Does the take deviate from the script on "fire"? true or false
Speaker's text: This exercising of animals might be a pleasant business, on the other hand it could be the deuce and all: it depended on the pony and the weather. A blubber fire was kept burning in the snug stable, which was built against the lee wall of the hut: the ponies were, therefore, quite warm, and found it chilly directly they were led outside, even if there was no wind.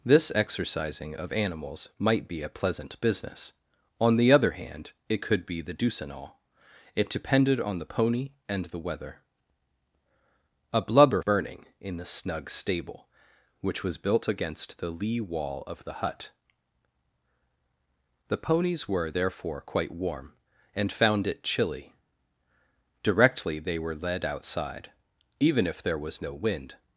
true